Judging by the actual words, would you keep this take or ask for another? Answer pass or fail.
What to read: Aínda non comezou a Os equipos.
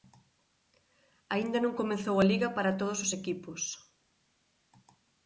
fail